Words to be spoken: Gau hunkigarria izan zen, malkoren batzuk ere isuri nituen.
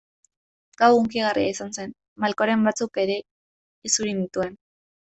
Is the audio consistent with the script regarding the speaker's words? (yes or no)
yes